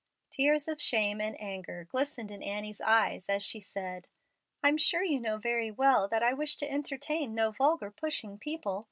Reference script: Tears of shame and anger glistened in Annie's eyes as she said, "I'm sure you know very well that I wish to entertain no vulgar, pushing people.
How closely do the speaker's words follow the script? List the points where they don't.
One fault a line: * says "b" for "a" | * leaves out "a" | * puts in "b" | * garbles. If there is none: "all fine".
all fine